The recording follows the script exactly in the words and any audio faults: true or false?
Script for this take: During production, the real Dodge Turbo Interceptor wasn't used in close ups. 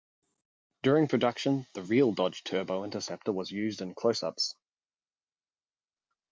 false